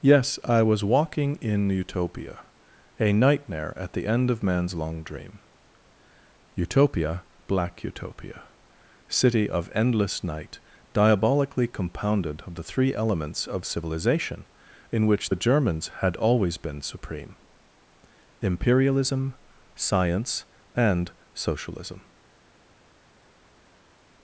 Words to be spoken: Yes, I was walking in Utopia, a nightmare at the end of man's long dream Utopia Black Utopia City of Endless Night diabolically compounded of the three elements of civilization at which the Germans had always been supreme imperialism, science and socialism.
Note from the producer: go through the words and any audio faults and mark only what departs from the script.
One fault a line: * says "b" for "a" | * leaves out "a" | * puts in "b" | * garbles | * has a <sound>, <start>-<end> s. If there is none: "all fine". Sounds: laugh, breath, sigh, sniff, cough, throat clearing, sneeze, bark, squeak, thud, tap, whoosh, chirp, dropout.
* says "in" for "at"